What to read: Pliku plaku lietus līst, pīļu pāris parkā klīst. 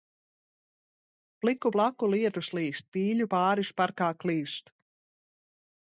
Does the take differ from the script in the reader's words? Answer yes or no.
no